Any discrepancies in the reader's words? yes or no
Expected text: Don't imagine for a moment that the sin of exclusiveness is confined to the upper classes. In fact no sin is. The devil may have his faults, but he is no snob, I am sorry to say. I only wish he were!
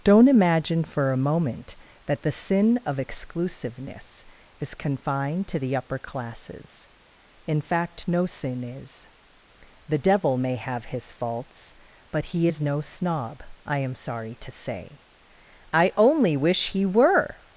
no